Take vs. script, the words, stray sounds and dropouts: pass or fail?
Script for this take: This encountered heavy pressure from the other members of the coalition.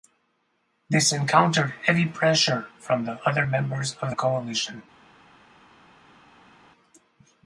pass